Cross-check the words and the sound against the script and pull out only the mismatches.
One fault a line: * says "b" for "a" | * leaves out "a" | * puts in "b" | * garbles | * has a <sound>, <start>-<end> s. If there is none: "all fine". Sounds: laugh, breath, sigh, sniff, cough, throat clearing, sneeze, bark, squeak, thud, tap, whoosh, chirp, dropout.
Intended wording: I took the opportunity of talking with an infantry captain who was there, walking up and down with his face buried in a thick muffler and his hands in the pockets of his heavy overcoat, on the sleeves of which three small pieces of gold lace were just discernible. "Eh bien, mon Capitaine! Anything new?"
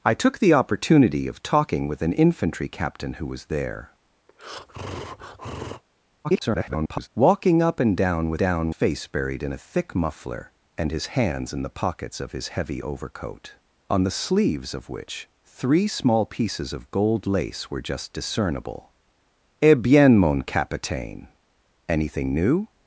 * has a breath, 4.3-5.8 s
* garbles
* says "down" for "his"